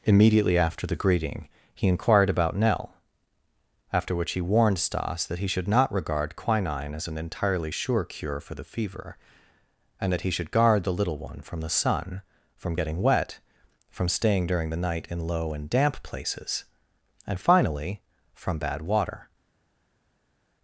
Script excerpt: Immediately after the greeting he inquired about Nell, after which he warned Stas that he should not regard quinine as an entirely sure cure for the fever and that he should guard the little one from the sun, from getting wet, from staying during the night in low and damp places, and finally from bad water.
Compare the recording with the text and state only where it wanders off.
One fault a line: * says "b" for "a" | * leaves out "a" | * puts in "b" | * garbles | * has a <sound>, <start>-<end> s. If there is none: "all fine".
all fine